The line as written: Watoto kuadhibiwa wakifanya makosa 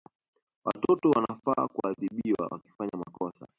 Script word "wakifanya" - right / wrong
right